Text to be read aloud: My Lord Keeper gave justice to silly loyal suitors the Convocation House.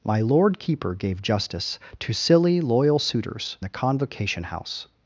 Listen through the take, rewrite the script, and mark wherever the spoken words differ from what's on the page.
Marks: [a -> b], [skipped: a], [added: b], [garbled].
My Lord Keeper gave justice to silly loyal suitors the Convocation House.